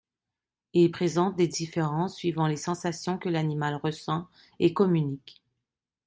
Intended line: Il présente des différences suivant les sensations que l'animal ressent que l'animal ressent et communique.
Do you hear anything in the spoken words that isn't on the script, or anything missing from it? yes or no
yes